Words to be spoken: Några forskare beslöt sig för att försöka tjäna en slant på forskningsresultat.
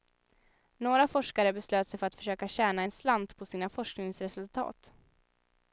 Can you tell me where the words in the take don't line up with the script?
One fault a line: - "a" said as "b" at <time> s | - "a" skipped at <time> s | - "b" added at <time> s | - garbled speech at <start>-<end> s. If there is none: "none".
- "sina" added at 3.4 s